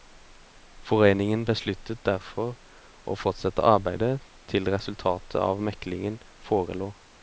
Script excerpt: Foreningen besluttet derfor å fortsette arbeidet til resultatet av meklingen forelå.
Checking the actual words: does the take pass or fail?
pass